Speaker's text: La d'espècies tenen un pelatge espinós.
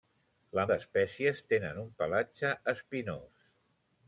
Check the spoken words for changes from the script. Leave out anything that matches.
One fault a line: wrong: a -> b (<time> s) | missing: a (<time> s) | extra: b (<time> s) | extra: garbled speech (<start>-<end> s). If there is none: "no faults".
no faults